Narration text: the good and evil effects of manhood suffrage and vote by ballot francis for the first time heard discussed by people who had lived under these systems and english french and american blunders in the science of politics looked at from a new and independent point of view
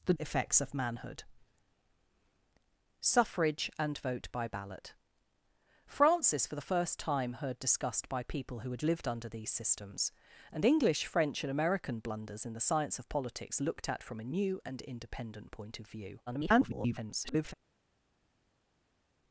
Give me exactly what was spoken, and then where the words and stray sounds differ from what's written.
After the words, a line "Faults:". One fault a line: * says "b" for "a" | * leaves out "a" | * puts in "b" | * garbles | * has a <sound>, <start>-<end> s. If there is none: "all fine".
the effects of manhood suffrage and vote by ballot francis for the first time heard discussed by people who had lived under these systems and english french and american blunders in the science of politics looked at from a new and independent point of view [garbled]
Faults:
* leaves out "good and evil"
* garbles